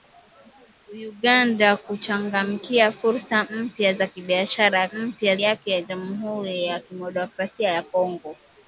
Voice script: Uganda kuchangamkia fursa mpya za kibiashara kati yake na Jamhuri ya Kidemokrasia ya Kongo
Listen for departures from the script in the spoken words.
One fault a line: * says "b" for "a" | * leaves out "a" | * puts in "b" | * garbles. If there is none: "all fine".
* says "mpya" for "kati"